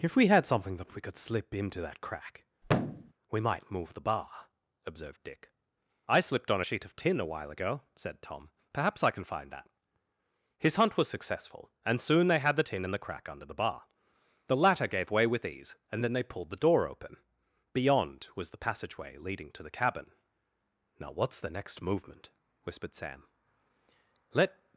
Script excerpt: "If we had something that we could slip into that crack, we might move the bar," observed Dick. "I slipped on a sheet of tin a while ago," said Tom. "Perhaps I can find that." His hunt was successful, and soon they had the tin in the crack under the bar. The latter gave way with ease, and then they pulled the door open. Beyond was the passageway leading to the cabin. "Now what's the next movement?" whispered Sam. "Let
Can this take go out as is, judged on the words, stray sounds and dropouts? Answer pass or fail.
fail